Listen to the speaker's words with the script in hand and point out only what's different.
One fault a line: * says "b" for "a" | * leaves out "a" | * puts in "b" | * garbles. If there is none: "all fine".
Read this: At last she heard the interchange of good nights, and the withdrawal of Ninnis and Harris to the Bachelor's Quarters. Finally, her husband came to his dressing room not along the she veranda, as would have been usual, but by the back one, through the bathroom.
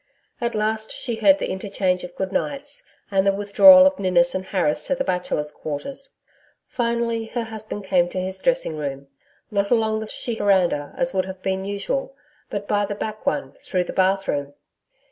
all fine